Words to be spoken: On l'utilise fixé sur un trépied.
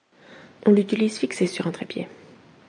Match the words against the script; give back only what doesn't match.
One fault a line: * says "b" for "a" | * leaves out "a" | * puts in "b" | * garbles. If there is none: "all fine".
all fine